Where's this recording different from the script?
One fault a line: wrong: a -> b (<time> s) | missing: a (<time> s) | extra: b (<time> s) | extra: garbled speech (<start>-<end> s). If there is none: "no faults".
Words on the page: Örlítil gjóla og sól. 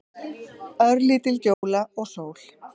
no faults